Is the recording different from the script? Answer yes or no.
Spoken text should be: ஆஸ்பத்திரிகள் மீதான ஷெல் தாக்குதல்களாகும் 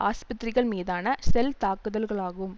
no